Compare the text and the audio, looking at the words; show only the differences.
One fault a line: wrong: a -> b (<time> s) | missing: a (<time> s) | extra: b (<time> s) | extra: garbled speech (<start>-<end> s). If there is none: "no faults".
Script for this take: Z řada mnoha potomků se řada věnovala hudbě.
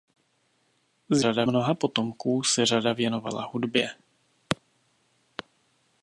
no faults